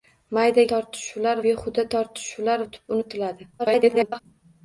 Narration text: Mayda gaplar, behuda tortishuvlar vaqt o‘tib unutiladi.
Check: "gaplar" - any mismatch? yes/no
yes